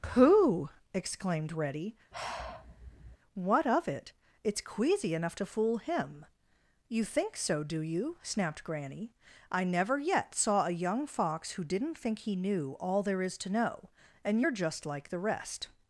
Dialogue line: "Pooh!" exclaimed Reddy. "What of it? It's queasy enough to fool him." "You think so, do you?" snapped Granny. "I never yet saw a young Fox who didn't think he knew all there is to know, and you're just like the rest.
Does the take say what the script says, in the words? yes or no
yes